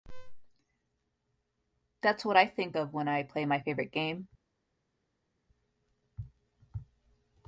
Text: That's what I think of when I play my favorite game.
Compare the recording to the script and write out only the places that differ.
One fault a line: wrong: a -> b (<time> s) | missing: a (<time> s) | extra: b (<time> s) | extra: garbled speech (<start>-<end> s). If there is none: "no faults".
no faults